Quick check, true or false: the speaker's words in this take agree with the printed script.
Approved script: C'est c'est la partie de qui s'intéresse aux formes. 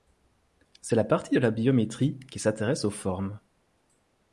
false